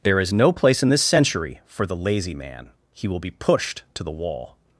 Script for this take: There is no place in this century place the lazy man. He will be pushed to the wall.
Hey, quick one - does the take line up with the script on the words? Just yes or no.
no